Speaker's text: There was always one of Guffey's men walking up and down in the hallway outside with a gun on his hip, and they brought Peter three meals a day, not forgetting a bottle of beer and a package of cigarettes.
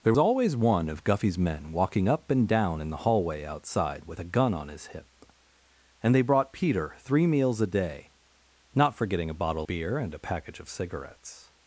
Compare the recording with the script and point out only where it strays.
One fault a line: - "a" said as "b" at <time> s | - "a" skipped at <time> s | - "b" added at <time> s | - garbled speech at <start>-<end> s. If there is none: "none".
- "was" skipped at 0.1 s
- "of" skipped at 9.7 s